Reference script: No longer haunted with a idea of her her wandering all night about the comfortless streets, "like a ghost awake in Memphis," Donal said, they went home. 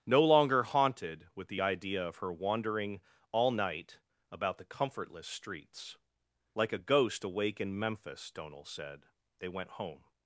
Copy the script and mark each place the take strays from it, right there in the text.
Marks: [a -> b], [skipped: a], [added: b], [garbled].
No longer haunted with [a -> the] idea of her [skipped: her] wandering all night about the comfortless streets, "like a ghost awake in Memphis," Donal said, they went home.